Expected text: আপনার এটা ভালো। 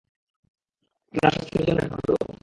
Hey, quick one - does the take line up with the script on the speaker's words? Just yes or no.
no